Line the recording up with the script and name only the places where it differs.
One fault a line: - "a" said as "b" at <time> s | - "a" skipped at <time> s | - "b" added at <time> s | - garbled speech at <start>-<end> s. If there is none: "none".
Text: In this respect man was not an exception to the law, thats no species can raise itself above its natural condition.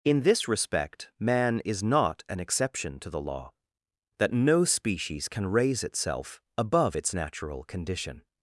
- "was" said as "is" at 1.6 s
- "thats" said as "that" at 4.2 s